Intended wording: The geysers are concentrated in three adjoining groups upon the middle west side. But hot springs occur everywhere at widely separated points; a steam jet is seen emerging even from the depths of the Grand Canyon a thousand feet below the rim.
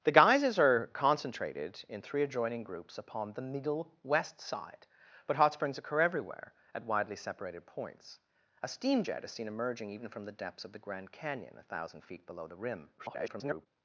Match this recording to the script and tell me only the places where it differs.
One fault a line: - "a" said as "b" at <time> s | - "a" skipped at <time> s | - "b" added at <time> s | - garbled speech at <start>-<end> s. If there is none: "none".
- garbled speech at 13.0-13.7 s